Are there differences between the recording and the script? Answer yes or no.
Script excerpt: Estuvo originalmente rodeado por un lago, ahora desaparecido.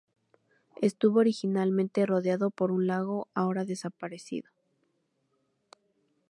no